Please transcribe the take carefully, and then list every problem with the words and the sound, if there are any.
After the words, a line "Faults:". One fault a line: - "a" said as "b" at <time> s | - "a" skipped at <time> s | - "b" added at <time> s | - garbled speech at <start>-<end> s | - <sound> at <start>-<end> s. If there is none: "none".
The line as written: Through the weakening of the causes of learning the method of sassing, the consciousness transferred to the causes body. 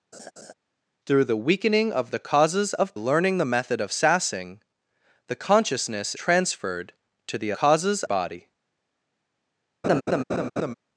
Through the weakening of the causes of learning the method of sassing, the consciousness transferred to the causes body.
Faults:
- laugh at 0.1-0.5 s
- laugh at 9.8-10.7 s